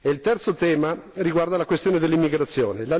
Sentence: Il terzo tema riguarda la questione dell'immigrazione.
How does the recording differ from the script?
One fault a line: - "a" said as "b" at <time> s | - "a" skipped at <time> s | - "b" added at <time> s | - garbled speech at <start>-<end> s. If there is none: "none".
none